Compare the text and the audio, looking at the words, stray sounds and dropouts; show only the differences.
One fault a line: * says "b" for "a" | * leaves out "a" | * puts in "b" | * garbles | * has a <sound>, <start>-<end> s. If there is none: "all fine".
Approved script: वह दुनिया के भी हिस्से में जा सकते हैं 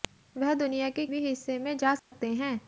* has a dropout, 2.0-2.1 s